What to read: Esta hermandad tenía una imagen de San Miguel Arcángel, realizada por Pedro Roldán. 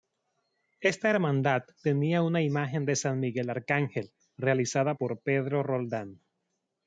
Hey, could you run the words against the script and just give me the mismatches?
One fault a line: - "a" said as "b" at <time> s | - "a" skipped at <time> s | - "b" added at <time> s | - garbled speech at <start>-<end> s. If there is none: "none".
none